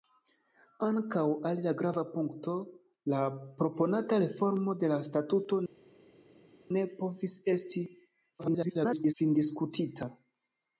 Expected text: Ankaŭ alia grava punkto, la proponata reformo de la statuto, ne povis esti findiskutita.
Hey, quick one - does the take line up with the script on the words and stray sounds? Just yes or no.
no